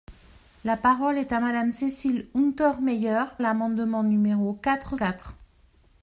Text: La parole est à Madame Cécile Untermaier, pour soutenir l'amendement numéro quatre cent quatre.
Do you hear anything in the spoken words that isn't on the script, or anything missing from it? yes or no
yes